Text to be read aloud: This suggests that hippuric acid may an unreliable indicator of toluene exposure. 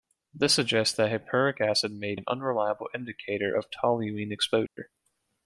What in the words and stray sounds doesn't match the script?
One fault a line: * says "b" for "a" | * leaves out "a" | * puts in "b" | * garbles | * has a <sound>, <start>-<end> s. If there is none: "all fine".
* has a dropout, 4.7-4.8 s